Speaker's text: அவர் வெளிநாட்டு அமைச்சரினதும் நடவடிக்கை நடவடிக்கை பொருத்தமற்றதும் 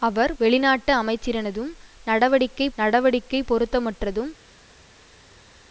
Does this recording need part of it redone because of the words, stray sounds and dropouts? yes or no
no